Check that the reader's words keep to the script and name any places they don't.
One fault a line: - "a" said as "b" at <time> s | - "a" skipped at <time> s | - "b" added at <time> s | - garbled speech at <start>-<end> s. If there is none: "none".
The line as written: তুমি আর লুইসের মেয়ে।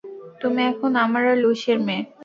- "এখন আমার" added at 0.7 s